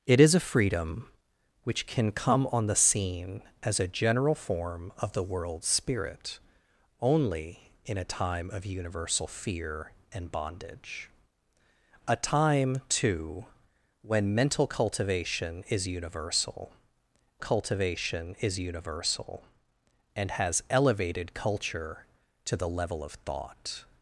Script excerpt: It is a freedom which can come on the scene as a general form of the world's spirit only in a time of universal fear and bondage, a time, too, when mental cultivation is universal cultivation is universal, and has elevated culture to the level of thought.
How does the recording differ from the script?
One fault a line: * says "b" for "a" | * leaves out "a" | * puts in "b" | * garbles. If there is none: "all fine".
all fine